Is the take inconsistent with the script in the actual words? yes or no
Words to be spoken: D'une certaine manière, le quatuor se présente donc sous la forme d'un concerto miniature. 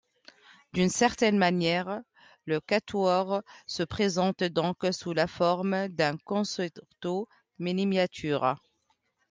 no